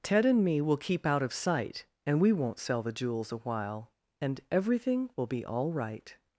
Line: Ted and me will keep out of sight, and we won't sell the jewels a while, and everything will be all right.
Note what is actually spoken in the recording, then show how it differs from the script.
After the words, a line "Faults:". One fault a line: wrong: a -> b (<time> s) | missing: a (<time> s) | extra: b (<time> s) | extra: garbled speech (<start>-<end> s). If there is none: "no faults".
Ted and me will keep out of sight, and we won't sell the jewels a while, and everything will be all right.
Faults:
no faults